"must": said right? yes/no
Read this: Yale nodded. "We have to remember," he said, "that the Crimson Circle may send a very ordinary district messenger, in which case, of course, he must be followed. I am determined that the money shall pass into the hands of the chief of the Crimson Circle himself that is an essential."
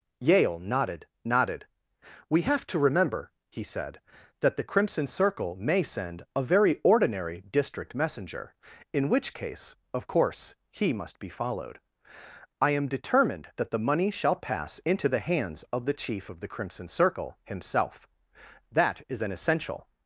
yes